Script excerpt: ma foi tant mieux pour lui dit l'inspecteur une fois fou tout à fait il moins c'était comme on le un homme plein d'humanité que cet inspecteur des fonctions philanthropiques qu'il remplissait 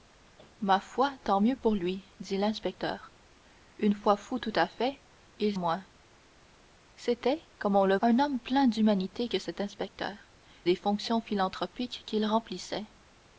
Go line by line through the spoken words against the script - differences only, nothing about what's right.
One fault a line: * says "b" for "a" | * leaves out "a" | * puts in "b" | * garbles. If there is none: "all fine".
all fine